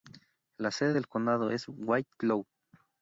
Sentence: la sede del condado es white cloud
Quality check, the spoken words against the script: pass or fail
pass